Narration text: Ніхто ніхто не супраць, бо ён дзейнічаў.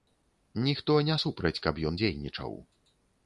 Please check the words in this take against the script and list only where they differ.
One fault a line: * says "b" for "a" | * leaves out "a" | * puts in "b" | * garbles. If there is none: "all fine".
* leaves out "ніхто"
* says "каб" for "бо"